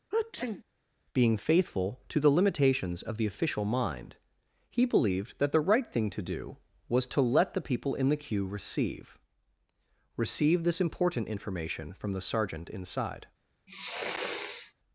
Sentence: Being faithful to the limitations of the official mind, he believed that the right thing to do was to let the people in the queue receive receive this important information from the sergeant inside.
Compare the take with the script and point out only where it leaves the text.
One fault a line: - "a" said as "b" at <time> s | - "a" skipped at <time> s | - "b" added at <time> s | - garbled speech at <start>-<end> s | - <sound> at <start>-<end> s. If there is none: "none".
- sneeze at 0.1-0.6 s
- sniff at 13.7-14.7 s